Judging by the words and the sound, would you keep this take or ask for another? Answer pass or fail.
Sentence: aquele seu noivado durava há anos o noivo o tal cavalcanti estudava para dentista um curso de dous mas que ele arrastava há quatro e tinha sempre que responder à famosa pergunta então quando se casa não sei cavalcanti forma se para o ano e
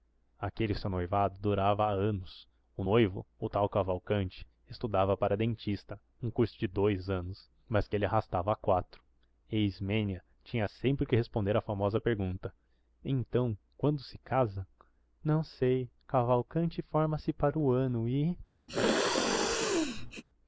fail